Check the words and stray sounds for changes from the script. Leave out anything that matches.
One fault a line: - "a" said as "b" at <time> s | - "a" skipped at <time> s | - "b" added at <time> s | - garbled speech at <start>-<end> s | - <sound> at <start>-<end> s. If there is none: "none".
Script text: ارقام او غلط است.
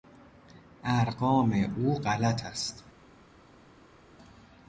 none